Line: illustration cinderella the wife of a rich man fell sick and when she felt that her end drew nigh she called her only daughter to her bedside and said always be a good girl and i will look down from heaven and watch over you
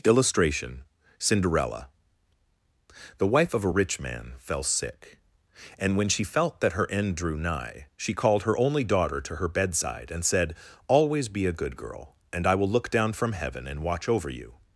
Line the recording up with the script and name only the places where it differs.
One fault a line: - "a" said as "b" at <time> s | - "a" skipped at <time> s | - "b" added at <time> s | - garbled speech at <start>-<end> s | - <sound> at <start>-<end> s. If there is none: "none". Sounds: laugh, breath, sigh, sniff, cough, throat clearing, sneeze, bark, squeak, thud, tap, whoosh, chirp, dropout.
none